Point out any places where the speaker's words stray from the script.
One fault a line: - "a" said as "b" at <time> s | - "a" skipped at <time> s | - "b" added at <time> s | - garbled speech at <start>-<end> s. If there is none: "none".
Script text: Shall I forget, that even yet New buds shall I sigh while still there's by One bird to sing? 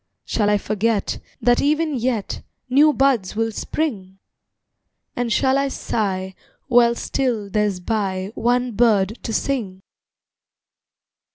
- "will spring And" added at 3.3 s